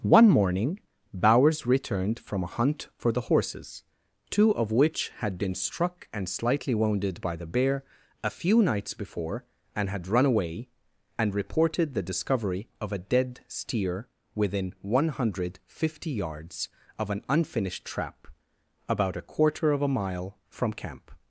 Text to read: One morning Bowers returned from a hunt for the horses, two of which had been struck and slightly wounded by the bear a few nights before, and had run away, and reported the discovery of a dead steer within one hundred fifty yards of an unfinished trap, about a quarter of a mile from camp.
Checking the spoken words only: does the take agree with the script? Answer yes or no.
yes